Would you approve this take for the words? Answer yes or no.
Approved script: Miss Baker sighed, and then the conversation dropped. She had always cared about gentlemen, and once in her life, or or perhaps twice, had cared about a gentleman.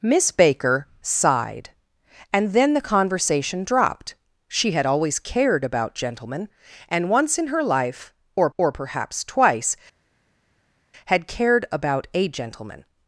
yes